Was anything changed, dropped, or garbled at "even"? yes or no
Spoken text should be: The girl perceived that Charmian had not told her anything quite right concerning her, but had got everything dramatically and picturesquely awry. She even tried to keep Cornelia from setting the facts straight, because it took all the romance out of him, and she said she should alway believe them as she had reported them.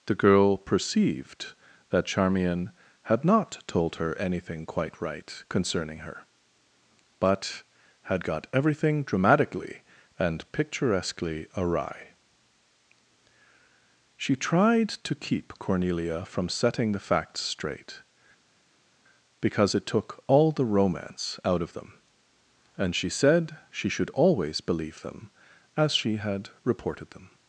yes